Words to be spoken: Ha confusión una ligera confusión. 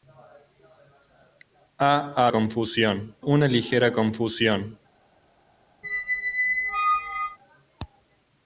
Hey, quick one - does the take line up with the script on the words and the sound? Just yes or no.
no